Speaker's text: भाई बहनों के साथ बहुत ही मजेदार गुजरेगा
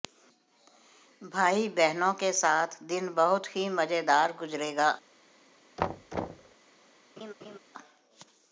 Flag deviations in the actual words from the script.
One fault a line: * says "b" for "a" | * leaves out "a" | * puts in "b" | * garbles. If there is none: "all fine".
* puts in "दिन"